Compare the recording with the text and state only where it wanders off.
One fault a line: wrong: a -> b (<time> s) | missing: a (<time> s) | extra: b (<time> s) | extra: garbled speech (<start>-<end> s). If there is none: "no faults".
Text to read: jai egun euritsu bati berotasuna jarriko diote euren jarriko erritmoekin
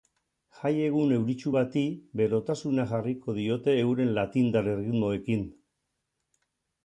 wrong: jarriko -> latindar (4.2 s)